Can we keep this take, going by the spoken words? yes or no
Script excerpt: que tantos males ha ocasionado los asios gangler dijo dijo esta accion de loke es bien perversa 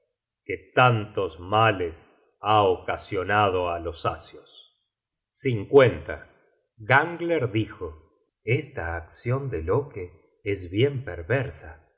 no